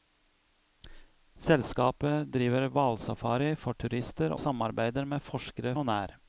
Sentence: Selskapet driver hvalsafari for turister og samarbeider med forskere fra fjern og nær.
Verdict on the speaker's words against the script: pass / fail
fail